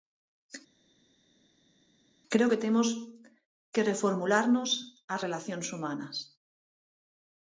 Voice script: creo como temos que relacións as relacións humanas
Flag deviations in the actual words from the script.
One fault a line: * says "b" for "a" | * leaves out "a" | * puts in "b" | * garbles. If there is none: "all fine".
* says "que" for "como"
* says "reformularnos" for "relacións"